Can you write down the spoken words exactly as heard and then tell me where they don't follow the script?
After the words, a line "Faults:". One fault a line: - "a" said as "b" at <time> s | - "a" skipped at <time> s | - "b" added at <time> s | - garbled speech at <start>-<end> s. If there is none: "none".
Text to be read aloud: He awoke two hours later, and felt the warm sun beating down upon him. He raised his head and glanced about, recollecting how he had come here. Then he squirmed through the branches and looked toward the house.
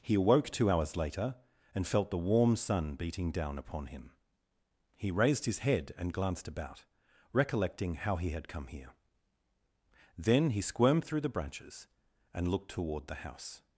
He awoke two hours later, and felt the warm sun beating down upon him. He raised his head and glanced about, recollecting how he had come here. Then he squirmed through the branches and looked toward the house.
Faults:
none